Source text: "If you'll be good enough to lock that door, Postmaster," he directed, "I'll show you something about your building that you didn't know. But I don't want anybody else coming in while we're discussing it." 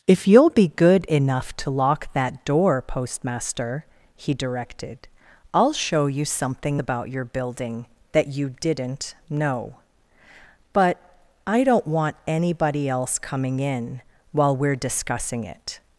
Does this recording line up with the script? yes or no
yes